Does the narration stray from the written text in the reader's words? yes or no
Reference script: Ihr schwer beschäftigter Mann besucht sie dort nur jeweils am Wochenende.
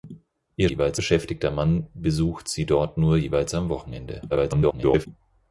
yes